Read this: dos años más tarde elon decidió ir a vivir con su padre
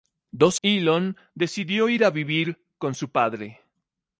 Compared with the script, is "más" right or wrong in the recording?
wrong